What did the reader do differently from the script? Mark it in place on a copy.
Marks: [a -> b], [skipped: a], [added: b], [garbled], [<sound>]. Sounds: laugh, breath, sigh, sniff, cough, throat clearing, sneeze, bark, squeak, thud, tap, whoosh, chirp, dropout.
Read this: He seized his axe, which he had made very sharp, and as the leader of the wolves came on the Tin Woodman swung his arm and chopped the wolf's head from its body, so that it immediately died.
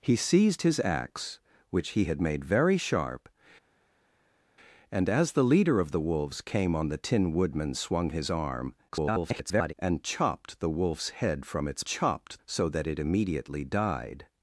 He seized his axe, which he had made very sharp, and as the leader of the wolves came on the Tin Woodman swung his arm [garbled] and chopped the wolf's head from its [body, -> chopped] so that it immediately died.